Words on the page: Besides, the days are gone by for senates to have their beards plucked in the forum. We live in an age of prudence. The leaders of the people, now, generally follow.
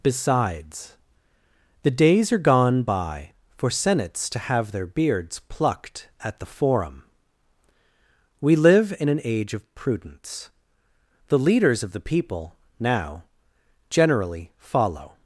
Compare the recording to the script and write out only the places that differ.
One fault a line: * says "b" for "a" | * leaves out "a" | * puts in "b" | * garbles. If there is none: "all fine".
* says "at" for "in"